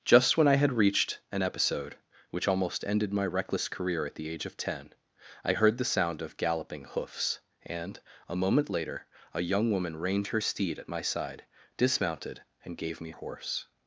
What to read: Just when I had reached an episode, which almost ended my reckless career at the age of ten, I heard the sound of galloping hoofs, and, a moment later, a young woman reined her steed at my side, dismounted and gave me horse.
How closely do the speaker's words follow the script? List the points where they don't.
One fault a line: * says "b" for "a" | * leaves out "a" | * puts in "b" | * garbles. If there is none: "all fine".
all fine